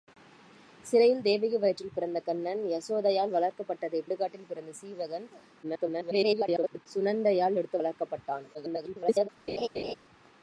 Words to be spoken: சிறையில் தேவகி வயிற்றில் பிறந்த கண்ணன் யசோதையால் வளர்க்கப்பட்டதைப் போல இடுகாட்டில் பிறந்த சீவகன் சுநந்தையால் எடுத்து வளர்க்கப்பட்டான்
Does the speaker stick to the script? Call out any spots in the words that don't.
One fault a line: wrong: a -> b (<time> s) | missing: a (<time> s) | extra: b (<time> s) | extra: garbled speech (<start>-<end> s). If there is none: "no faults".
missing: போல (4.1 s)
extra: garbled speech (5.6-6.9 s)
extra: garbled speech (8.5-9.3 s)